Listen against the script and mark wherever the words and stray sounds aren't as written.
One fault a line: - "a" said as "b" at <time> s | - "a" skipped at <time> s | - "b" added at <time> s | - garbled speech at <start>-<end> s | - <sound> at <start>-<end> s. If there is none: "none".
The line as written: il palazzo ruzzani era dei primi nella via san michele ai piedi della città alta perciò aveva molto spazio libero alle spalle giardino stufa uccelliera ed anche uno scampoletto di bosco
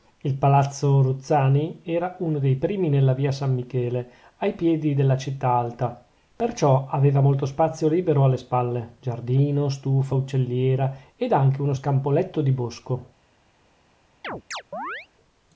- "uno" added at 2.2 s
- chirp at 14.2-15.1 s